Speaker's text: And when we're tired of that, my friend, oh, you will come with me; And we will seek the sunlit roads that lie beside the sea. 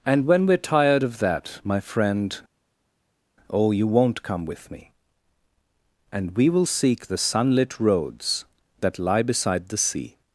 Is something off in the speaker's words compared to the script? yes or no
yes